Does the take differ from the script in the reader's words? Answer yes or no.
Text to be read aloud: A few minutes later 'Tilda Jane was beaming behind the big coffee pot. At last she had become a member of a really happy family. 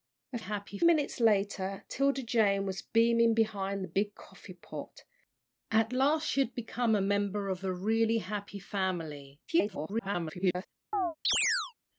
yes